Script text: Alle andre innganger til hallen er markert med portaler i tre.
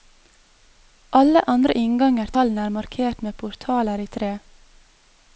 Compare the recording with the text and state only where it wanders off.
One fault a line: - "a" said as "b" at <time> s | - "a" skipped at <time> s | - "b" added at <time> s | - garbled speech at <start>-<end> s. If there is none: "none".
- "til" skipped at 2.3 s